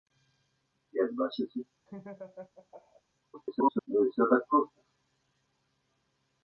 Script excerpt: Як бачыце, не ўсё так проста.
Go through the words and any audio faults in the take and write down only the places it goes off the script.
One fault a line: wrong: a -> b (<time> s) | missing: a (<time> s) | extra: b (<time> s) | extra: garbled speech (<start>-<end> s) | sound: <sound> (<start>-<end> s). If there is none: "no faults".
sound: laugh (1.9-3.0 s)
extra: garbled speech (3.3-3.9 s)